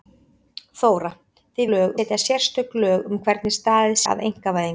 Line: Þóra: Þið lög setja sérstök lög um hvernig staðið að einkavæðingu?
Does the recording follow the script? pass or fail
pass